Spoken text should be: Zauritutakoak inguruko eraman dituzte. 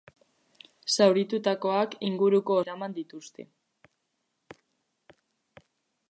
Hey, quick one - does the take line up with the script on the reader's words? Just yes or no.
yes